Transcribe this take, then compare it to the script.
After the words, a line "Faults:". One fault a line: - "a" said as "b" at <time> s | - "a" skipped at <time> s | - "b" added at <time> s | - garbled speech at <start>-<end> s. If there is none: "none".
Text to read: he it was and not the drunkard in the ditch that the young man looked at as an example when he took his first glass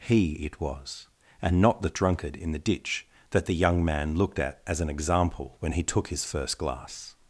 he it was and not the drunkard in the ditch that the young man looked at as an example when he took his first glass
Faults:
none